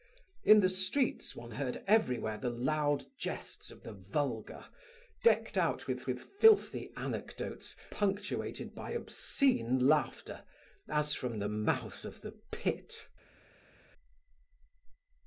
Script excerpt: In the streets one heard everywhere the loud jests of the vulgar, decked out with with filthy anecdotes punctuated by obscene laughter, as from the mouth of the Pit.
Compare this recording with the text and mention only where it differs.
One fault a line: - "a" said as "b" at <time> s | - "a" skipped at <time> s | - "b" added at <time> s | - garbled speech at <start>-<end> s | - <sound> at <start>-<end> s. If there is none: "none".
none